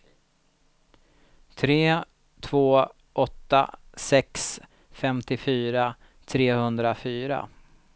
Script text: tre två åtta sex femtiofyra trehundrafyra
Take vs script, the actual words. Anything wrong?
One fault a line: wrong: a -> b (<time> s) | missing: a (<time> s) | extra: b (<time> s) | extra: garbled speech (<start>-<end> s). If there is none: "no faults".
no faults